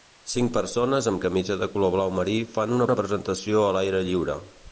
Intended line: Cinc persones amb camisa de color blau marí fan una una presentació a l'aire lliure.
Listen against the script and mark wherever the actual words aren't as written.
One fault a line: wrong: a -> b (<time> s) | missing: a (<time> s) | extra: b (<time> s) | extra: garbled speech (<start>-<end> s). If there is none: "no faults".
no faults